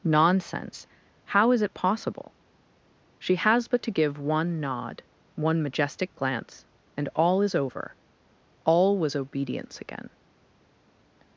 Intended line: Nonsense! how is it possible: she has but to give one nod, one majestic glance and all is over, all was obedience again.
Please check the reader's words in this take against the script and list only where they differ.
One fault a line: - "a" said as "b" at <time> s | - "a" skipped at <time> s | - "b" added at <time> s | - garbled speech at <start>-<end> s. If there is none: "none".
none